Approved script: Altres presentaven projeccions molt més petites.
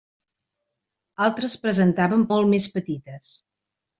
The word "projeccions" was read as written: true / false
false